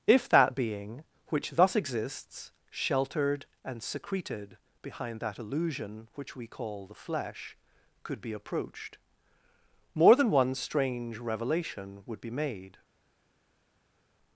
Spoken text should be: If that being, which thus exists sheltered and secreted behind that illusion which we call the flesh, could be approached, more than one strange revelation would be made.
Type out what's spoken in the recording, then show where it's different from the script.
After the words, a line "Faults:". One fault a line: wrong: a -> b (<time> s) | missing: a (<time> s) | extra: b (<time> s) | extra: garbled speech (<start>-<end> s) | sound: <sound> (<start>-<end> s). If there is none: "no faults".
If that being, which thus exists sheltered and secreted behind that illusion which we call the flesh, could be approached, more than one strange revelation would be made.
Faults:
no faults